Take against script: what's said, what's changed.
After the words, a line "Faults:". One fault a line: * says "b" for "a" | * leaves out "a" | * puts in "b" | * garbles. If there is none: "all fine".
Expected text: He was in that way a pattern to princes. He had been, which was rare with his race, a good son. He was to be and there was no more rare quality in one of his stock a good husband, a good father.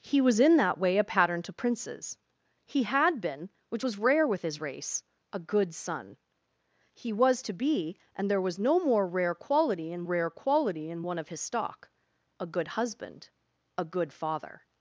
He was in that way a pattern to princes. He had been, which was rare with his race, a good son. He was to be and there was no more rare quality in rare quality in one of his stock a good husband, a good father.
Faults:
* puts in "rare quality in"